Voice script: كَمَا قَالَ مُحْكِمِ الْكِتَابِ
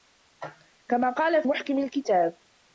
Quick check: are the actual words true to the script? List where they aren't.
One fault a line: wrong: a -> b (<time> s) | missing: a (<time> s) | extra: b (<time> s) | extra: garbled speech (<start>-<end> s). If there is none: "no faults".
no faults